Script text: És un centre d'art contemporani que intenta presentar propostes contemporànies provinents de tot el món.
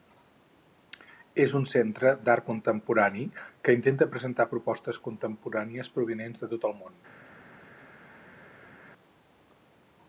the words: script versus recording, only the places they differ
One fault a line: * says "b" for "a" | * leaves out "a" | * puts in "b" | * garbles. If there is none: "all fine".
all fine